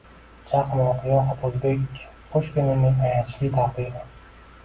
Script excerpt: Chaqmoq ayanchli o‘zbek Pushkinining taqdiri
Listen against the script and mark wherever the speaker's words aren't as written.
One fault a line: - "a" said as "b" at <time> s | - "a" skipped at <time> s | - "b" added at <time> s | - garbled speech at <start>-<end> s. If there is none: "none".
- "ayanchli" said as "yoxud" at 1.1 s
- "ayanchli" added at 3.1 s